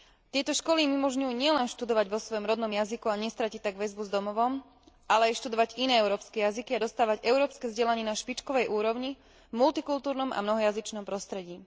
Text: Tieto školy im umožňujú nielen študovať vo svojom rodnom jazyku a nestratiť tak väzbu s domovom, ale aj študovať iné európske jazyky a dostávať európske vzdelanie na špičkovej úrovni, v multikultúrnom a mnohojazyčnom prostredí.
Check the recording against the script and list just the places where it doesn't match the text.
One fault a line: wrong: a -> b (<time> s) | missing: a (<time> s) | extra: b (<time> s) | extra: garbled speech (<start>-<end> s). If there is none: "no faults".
no faults